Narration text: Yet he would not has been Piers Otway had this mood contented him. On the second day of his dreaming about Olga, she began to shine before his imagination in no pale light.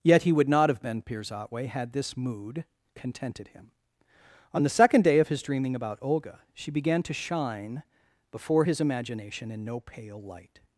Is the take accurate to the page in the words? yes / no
no